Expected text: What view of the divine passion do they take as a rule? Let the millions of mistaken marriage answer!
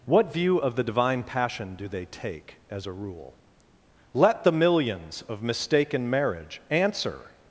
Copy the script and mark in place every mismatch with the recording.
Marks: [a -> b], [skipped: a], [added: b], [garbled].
What view of the divine passion do they take as a rule? Let the millions of mistaken marriage answer!